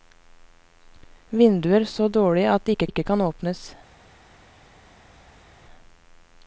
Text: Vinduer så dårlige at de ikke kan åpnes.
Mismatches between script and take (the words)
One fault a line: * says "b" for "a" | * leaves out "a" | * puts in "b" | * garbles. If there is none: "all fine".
* puts in "ikke"